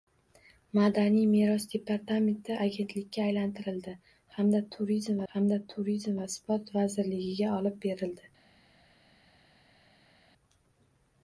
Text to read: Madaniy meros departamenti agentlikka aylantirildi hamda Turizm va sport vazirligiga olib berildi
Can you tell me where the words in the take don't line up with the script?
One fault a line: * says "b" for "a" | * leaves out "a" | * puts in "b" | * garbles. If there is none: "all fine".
* puts in "hamda Turizm"